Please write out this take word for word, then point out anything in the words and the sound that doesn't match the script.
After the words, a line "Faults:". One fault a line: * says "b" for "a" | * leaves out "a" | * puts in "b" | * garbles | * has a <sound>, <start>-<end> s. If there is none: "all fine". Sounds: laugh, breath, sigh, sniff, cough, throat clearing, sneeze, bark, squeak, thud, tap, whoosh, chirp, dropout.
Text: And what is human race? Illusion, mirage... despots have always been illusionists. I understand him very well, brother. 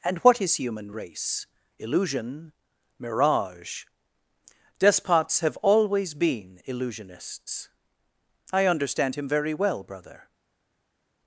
And what is human race? Illusion, mirage... despots have always been illusionists. I understand him very well, brother.
Faults:
all fine